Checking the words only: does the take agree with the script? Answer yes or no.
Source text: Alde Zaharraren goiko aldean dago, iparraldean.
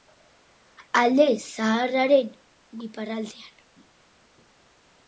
no